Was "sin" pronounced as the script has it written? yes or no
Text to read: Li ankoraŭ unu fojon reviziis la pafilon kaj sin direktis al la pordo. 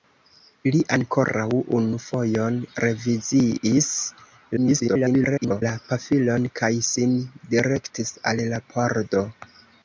yes